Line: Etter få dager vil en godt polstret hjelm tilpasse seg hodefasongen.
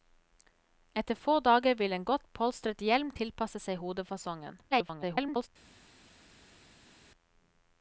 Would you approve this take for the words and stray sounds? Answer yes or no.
no